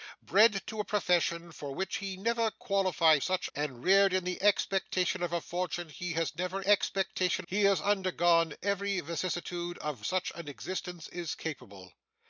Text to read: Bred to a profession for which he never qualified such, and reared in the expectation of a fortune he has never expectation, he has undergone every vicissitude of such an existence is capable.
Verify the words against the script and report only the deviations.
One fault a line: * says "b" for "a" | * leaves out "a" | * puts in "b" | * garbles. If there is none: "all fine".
all fine